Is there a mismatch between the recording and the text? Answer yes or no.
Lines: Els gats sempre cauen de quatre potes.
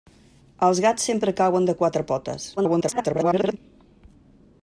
yes